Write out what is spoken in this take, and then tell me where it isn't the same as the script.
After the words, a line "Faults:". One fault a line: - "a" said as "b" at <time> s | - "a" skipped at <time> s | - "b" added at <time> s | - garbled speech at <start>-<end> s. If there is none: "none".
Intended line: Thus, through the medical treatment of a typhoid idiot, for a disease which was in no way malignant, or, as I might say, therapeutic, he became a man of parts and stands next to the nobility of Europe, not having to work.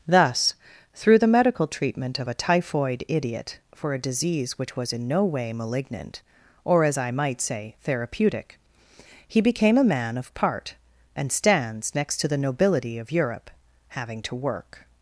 Thus, through the medical treatment of a typhoid idiot, for a disease which was in no way malignant, or, as I might say, therapeutic, he became a man of part and stands next to the nobility of Europe, having to work.
Faults:
- "parts" said as "part" at 10.3 s
- "not" skipped at 13.5 s